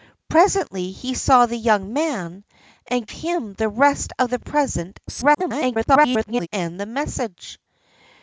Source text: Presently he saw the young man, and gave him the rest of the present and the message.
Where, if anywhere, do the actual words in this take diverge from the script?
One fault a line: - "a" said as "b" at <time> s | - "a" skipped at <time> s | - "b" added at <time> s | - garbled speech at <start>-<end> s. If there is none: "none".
- "gave" skipped at 3.1 s
- garbled speech at 5.1-6.5 s